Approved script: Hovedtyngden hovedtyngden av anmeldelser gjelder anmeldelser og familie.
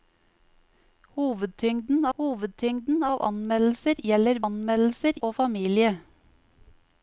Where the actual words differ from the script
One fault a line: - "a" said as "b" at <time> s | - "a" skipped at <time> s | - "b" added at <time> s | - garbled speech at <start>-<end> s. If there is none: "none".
none